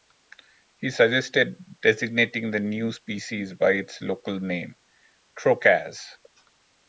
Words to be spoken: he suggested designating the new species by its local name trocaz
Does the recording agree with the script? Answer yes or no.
yes